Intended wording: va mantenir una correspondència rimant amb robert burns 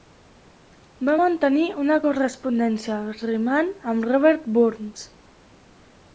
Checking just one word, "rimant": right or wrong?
right